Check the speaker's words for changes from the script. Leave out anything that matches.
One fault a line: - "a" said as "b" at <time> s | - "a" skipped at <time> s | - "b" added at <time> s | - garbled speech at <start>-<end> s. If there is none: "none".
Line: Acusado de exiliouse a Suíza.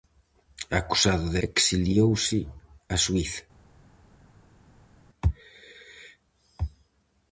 none